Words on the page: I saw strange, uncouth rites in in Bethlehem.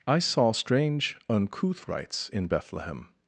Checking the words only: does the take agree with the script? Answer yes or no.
no